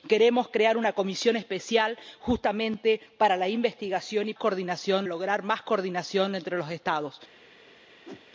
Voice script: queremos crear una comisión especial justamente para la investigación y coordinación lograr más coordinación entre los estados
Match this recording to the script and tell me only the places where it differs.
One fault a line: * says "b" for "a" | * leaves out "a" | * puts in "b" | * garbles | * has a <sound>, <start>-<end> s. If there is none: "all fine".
* has a whoosh, 8.1-8.3 s